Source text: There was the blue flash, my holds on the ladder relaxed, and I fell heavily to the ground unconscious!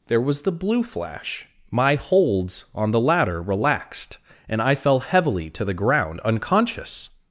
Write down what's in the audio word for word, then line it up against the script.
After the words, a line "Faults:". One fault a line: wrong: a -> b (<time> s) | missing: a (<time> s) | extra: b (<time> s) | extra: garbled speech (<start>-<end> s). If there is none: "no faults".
There was the blue flash, my holds on the ladder relaxed, and I fell heavily to the ground unconscious!
Faults:
no faults